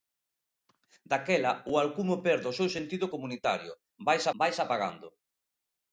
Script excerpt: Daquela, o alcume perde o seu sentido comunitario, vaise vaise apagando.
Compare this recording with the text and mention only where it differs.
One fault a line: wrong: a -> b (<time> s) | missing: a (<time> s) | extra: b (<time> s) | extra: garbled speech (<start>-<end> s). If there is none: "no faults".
no faults